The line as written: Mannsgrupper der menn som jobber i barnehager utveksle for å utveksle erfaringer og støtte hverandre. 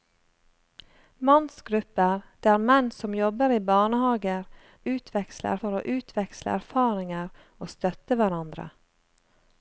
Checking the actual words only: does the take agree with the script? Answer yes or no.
yes